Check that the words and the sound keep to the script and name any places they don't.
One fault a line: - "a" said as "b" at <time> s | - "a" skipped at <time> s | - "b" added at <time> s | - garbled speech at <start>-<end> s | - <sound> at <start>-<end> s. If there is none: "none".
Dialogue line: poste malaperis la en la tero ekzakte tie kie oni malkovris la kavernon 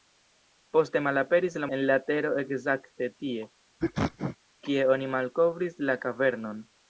- sneeze at 3.8-4.4 s